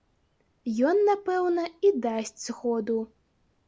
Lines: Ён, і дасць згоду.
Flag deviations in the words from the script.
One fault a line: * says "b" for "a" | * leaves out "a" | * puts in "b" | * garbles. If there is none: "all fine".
* puts in "напэўна"